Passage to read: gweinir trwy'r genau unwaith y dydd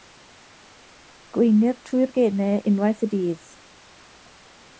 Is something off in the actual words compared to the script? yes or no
no